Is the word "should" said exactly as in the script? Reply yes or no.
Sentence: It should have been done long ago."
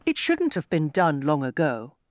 no